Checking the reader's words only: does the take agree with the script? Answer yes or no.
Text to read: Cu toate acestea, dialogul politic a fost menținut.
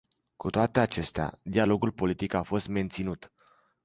yes